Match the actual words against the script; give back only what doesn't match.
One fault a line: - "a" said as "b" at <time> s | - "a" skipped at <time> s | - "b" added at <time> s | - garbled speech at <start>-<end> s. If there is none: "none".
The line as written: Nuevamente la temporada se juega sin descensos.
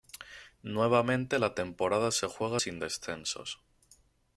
none